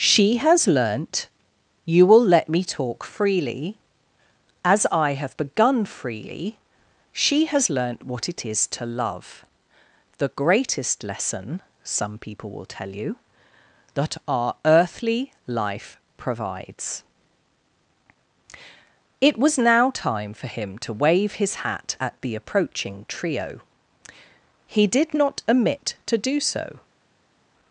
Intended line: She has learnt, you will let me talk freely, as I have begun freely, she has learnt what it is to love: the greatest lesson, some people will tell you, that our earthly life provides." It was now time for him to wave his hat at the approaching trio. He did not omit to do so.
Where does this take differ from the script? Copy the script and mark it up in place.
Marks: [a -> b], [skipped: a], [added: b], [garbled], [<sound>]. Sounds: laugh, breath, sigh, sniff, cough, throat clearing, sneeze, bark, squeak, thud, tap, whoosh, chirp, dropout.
She has learnt, you will let me talk freely, as I have begun freely, she has learnt what it is to love: the greatest lesson, some people will tell you, that our earthly life provides." It was now time for him to wave his hat at the approaching trio. He did not omit to do so.